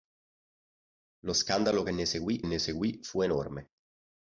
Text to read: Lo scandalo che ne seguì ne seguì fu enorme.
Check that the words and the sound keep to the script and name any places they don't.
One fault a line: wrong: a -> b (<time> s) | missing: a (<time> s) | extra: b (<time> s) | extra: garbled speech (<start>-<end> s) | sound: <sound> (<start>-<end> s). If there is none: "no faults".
no faults